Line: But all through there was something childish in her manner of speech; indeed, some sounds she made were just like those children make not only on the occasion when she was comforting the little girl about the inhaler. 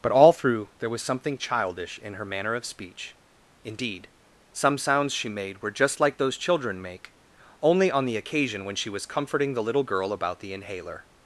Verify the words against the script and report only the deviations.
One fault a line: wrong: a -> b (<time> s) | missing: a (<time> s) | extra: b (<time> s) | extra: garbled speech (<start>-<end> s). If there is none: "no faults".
missing: not (7.1 s)